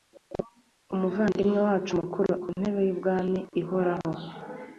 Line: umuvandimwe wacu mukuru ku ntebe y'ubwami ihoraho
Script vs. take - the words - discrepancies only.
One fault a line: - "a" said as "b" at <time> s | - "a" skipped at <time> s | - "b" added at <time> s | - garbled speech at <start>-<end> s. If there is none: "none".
none